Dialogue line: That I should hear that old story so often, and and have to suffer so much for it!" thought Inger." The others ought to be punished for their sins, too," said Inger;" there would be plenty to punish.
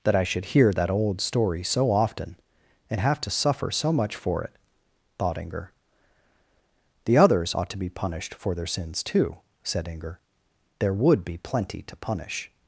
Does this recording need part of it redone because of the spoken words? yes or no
yes